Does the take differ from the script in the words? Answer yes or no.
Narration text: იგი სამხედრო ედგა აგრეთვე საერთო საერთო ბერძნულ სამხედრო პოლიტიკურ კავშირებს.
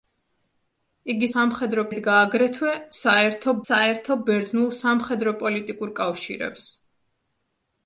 no